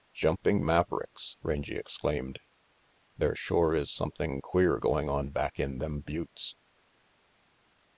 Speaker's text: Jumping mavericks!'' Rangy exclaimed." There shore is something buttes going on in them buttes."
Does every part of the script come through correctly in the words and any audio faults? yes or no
no